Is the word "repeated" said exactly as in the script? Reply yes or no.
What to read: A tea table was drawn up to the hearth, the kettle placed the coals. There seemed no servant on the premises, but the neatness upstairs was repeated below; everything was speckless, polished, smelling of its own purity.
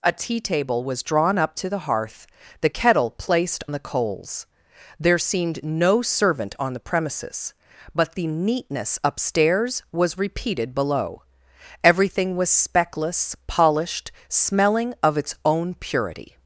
yes